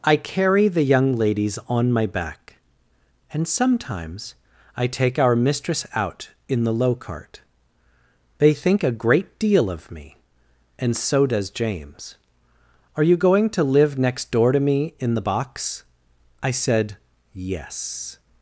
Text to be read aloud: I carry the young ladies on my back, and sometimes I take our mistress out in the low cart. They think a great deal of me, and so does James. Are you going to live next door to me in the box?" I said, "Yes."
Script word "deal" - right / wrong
right